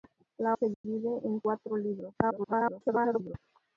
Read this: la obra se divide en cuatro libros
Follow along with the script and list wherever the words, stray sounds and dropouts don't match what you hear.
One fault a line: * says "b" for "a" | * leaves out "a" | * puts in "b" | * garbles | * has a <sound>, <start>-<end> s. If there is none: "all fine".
* leaves out "obra"
* has a dropout, 0.7-0.8 s
* garbles